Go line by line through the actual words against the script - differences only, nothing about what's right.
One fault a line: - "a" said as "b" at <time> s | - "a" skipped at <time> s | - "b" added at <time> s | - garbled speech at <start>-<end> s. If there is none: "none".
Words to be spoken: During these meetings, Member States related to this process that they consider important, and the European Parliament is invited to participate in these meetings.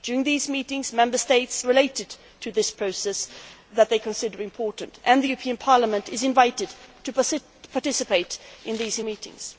none